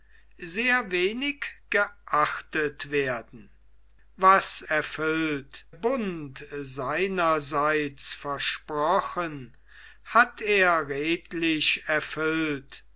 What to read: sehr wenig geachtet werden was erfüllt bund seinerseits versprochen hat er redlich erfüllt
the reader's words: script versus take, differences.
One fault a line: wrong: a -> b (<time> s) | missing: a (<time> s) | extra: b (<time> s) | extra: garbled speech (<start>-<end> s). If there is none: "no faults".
no faults